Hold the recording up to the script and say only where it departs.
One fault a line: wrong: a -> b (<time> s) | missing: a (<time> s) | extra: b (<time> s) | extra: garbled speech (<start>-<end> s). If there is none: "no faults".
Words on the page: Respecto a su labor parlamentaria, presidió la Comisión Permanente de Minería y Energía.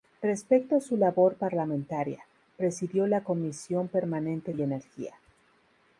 missing: de Minería (4.5 s)